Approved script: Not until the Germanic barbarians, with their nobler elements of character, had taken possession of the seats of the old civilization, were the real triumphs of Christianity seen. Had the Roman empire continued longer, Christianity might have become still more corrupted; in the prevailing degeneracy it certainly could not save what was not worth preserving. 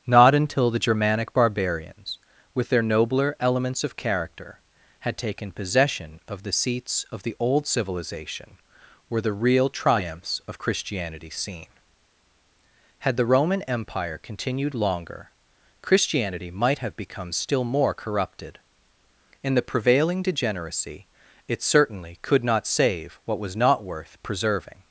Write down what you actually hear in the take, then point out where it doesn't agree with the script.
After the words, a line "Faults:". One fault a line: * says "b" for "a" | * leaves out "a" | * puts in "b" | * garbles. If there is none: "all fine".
Not until the Germanic barbarians, with their nobler elements of character, had taken possession of the seats of the old civilization, were the real triumphs of Christianity seen. Had the Roman empire continued longer, Christianity might have become still more corrupted; in the prevailing degeneracy it certainly could not save what was not worth preserving.
Faults:
all fine